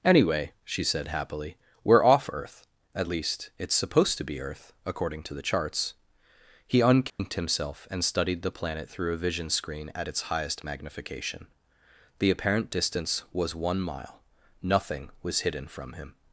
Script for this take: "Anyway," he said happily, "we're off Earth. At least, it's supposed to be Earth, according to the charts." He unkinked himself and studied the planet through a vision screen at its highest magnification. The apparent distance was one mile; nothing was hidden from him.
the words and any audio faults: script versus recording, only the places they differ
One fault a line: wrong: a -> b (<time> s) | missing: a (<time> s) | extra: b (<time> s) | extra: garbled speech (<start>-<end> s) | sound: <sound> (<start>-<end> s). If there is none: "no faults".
wrong: he -> she (0.6 s)
sound: dropout (7.1-7.2 s)